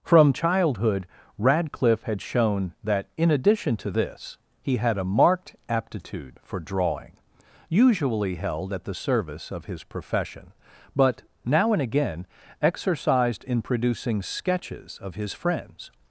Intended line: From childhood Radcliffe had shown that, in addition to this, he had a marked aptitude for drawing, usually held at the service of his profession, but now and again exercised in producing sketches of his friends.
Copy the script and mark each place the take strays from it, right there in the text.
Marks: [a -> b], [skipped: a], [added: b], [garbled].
From childhood Radcliffe had shown that, in addition to this, he had a marked aptitude for drawing, usually held at the service of his profession, but now and again exercised in producing sketches of his friends.